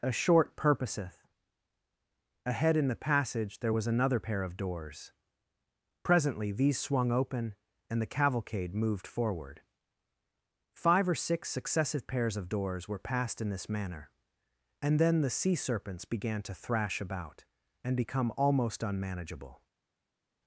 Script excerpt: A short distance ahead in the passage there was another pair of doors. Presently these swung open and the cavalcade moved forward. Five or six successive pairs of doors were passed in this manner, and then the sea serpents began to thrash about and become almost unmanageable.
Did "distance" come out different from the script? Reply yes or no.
yes